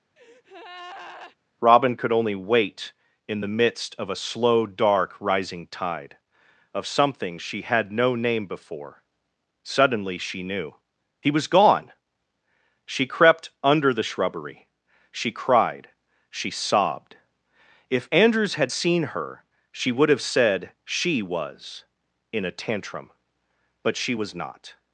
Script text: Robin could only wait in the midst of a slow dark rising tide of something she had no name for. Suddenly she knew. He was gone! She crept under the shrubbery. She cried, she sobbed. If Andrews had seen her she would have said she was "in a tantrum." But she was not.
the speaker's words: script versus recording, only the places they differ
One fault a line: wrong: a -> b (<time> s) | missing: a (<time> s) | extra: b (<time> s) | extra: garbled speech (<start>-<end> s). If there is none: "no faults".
wrong: for -> before (8.5 s)